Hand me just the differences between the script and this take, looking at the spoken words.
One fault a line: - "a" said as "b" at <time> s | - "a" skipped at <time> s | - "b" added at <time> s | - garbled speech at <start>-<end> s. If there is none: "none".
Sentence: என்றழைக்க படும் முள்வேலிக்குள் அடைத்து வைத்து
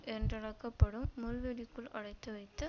none